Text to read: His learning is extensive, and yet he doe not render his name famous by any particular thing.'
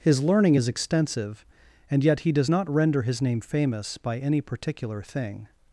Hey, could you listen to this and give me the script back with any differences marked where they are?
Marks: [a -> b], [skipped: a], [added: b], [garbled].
His learning is extensive, and yet he [doe -> does] not render his name famous by any particular thing.'